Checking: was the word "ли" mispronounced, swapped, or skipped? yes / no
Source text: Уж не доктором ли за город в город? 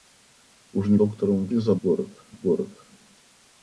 no